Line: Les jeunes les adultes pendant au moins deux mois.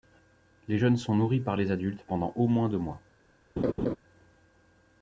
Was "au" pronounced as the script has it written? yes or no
yes